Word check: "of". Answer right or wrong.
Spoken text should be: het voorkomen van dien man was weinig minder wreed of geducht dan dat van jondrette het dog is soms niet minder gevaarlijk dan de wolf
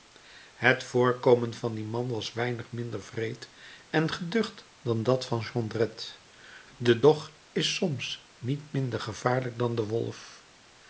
wrong